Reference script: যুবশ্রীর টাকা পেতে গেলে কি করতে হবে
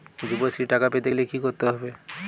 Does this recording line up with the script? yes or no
yes